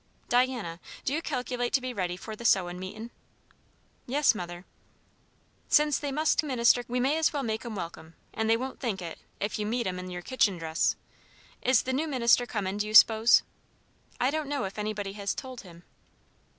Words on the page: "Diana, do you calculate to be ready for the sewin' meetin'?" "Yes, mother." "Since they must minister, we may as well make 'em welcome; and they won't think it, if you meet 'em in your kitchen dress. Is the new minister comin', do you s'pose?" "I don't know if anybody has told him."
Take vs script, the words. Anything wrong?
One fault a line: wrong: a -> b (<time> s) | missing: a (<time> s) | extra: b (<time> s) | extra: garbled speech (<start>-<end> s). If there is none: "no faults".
no faults